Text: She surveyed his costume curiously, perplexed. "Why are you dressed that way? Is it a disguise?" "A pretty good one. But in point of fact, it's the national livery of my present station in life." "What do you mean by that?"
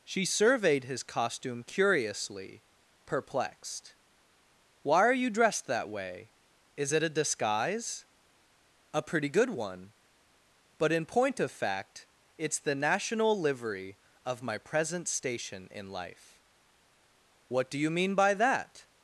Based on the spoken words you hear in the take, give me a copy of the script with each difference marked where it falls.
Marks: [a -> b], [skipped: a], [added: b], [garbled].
She surveyed his costume curiously, perplexed. "Why are you dressed that way? Is it a disguise?" "A pretty good one. But in point of fact, it's the national livery of my present station in life." "What do you mean by that?"